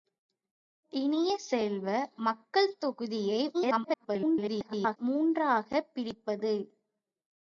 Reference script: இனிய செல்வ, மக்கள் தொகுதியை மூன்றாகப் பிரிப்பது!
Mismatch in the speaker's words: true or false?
true